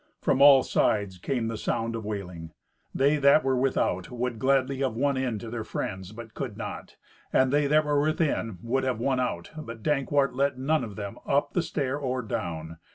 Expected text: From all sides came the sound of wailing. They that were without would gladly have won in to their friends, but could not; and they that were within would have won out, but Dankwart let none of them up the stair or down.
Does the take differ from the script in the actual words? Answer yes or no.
no